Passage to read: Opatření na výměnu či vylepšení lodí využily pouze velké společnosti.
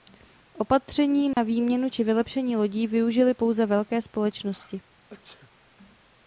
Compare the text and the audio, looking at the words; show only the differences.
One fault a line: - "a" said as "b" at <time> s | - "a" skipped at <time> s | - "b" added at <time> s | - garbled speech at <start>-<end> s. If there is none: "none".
none